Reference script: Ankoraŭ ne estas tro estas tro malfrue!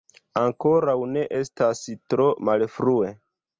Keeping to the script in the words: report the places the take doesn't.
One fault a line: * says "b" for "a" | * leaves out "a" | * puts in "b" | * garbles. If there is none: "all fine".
* leaves out "estas tro"